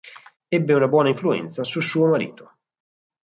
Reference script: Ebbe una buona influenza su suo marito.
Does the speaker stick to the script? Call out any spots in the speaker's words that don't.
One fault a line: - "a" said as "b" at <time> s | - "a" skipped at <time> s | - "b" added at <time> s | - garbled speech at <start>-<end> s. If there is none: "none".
none